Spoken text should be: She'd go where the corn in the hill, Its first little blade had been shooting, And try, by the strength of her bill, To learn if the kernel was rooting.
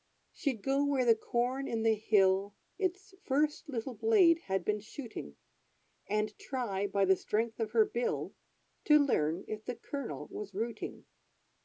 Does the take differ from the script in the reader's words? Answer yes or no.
no